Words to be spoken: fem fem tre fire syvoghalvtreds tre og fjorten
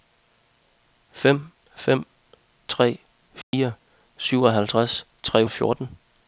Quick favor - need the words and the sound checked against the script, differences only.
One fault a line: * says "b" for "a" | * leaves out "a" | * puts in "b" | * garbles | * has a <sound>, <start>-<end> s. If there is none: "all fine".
* has a dropout, 3.4-3.5 s